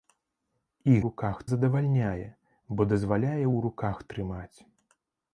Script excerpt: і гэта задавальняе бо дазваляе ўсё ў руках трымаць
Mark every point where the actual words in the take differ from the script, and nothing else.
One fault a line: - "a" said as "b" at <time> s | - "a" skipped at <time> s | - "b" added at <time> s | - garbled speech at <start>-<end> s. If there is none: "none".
- "гэта" said as "руках" at 1.1 s
- "ўсё" skipped at 3.3 s